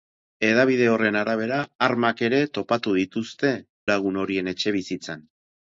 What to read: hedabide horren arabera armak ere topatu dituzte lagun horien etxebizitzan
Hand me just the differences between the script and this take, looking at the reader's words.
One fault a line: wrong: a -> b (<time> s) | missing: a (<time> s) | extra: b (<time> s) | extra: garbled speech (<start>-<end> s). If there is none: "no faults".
no faults